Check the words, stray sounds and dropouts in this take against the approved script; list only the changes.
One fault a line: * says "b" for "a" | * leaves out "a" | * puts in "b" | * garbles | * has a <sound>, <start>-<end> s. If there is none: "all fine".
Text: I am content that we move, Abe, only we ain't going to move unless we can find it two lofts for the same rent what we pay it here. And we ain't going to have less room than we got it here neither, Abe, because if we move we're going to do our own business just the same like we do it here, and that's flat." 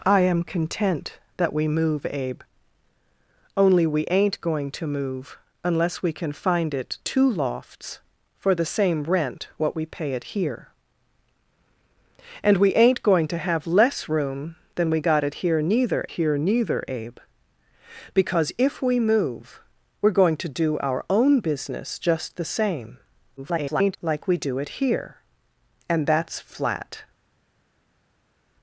* puts in "here neither"
* garbles